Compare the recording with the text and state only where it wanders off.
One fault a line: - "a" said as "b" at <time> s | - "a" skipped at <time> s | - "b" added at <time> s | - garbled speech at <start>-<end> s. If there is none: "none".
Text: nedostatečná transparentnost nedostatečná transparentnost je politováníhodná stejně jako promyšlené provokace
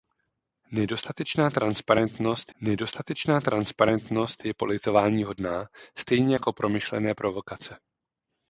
none